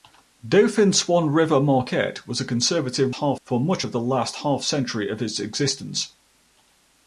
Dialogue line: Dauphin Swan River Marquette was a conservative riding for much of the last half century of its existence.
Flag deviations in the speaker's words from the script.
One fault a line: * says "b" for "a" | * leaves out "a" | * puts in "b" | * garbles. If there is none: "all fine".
* says "half" for "riding"